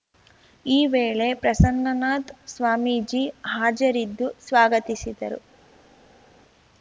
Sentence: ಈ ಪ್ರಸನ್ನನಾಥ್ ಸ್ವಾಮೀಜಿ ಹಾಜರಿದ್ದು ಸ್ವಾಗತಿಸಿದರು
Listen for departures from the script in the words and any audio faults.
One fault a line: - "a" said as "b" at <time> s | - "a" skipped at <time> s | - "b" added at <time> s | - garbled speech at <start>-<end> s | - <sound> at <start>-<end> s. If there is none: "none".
- "ವೇಳೆ" added at 0.8 s